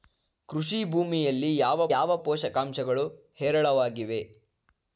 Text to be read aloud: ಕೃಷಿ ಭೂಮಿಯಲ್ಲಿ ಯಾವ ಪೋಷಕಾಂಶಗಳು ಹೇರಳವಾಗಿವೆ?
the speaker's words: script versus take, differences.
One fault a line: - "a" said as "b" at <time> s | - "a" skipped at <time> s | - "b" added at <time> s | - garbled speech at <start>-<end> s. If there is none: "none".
- "ಯಾವ" added at 1.9 s